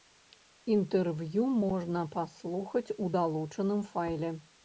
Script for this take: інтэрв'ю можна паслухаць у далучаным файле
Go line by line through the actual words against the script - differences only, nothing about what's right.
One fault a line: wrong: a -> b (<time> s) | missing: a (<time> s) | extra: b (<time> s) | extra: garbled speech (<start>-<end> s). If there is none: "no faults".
no faults